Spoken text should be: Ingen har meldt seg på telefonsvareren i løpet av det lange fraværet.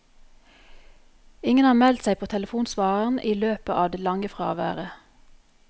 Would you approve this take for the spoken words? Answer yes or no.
yes